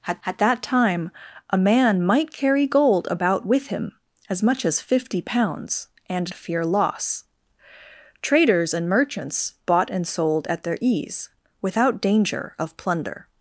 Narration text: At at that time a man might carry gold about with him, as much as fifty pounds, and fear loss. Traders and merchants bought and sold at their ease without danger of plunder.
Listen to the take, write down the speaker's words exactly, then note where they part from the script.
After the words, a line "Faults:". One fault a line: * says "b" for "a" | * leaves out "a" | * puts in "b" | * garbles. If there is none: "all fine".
At at that time a man might carry gold about with him, as much as fifty pounds, and fear loss. Traders and merchants bought and sold at their ease without danger of plunder.
Faults:
all fine